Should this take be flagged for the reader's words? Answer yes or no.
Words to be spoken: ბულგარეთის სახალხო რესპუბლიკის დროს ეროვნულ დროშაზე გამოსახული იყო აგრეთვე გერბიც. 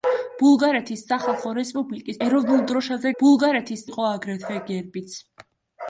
yes